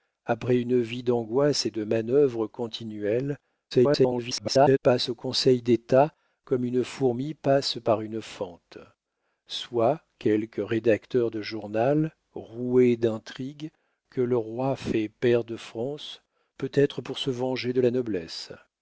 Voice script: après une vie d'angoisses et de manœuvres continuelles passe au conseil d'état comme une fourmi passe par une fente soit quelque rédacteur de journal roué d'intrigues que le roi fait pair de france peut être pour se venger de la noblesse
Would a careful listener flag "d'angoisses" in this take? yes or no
no